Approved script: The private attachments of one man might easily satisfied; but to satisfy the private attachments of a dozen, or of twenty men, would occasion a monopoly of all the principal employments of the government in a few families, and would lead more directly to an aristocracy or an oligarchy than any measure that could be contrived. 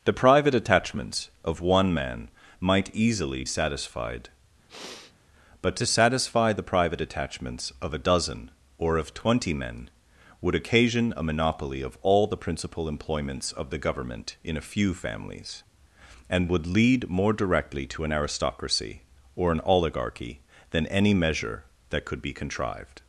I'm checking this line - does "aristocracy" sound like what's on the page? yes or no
yes